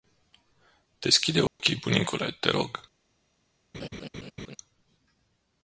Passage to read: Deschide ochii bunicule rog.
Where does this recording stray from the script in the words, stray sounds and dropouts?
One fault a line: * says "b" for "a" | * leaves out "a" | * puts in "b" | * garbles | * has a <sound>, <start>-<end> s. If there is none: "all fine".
* has a dropout, 1.5-1.6 s
* puts in "te"
* has a laugh, 3.7-4.6 s